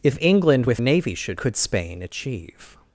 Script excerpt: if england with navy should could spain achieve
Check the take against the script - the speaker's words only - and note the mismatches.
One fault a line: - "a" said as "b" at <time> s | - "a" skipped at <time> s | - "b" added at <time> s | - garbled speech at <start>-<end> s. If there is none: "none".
none